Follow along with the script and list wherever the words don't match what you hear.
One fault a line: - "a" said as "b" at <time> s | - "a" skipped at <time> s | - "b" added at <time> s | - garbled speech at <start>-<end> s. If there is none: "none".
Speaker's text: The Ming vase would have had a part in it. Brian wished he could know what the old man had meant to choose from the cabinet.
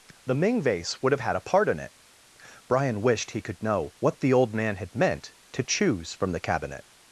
none